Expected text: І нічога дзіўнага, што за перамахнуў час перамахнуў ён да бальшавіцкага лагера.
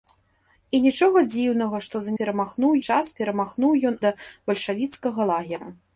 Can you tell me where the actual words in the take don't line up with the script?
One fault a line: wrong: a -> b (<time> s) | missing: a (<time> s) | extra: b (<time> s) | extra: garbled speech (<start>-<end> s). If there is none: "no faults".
no faults